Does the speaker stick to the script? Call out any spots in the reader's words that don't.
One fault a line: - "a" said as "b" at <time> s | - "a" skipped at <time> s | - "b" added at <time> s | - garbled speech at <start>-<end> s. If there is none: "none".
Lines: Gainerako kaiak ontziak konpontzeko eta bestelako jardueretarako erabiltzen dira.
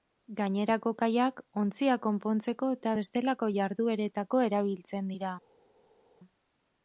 none